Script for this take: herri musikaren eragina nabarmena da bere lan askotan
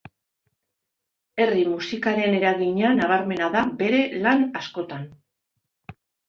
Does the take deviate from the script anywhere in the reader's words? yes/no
no